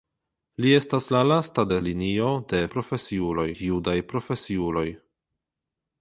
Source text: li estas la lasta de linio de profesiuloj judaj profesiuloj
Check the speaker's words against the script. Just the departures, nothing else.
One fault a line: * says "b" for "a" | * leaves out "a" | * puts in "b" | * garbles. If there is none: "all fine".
all fine